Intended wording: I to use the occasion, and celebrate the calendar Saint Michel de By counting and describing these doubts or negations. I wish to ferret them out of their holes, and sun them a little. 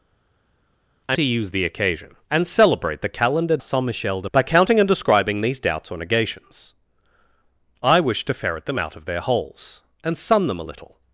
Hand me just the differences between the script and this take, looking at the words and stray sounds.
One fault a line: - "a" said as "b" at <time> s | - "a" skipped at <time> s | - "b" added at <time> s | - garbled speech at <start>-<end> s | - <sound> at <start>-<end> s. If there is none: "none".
none